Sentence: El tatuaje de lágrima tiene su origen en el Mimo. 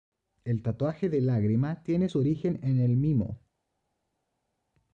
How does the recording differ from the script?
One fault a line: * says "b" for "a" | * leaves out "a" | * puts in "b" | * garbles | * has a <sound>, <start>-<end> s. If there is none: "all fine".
all fine